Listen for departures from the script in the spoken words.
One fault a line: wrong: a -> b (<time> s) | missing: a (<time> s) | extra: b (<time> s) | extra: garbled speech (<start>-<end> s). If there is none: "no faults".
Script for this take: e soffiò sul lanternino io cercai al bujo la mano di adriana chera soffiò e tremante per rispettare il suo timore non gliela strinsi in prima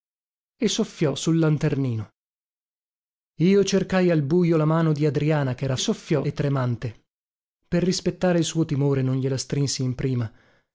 no faults